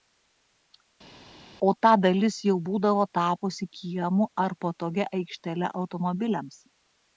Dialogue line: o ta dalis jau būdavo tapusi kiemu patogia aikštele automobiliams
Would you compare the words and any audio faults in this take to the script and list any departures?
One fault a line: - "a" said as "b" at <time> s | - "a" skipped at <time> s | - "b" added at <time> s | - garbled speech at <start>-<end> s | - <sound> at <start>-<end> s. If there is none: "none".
- "ar" added at 4.5 s